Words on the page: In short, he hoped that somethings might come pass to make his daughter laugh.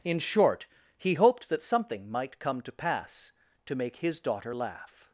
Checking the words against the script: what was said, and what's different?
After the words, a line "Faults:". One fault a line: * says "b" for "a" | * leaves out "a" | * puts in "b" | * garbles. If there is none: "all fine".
In short, he hoped that something might come to pass to make his daughter laugh.
Faults:
* says "something" for "somethings"
* puts in "to"